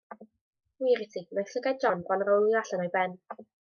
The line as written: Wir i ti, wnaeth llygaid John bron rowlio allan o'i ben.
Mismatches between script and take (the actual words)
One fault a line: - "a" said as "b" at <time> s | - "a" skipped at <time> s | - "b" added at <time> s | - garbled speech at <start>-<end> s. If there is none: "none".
none